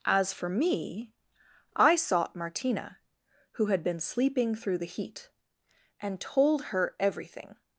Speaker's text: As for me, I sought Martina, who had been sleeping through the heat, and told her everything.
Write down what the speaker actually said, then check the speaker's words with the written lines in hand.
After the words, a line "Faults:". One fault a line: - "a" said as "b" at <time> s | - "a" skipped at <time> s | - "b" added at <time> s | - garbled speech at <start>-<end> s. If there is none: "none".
As for me, I sought Martina, who had been sleeping through the heat, and told her everything.
Faults:
none